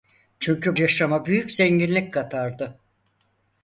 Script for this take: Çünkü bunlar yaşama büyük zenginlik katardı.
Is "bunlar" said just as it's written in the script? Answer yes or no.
no